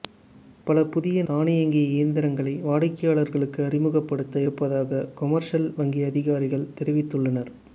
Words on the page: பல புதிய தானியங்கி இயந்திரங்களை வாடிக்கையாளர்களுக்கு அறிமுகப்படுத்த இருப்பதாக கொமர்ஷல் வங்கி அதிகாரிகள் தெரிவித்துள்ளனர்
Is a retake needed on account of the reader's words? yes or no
no